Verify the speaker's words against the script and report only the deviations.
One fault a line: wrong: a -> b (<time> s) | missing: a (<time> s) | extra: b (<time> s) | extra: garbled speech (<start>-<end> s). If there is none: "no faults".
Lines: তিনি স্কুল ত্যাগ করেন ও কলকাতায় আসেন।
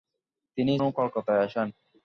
missing: স্কুল ত্যাগ করেন (0.7 s)